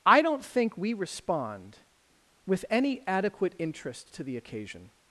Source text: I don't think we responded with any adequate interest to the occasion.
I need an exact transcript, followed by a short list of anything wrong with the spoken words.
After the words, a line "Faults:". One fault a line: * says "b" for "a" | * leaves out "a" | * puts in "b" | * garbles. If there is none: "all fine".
I don't think we respond with any adequate interest to the occasion.
Faults:
* says "respond" for "responded"